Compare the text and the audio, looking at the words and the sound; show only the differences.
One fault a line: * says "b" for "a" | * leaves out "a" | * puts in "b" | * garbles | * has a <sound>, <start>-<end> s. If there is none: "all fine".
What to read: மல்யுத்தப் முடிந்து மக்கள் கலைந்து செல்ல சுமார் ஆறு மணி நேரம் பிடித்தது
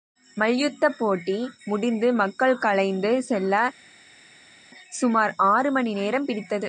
* puts in "போட்டி"